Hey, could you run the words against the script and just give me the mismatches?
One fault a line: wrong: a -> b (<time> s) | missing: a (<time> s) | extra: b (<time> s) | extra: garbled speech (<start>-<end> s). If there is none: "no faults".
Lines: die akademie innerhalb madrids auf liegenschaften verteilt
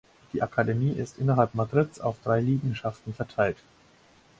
extra: ist (0.9 s)
extra: drei (2.2 s)